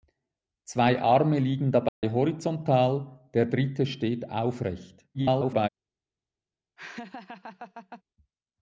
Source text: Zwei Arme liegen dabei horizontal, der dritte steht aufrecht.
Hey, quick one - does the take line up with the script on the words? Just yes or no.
no